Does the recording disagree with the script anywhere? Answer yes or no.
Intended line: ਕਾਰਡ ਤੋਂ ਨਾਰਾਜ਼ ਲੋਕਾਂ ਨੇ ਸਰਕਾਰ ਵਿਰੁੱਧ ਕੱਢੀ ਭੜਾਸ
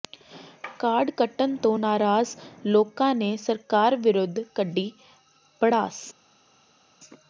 yes